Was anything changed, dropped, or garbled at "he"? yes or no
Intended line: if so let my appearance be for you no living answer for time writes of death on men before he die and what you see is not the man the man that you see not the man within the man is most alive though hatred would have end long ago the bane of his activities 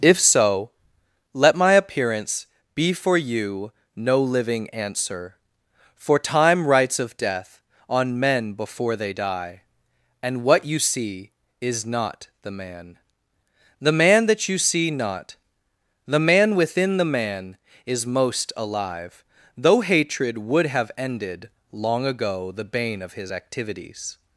yes